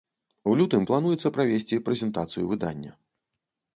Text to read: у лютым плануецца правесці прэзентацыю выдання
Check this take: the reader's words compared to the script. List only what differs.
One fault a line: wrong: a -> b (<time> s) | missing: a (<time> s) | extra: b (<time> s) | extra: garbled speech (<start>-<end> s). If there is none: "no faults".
no faults